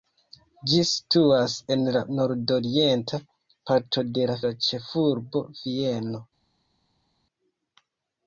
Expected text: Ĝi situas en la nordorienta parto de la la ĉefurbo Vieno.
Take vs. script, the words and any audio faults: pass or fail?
pass